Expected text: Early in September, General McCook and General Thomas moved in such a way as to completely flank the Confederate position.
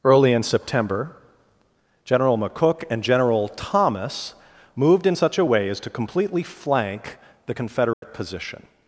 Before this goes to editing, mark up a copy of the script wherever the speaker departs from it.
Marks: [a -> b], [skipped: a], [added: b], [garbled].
Early in September, General McCook and General Thomas moved in such a way as to completely flank the Confederate position.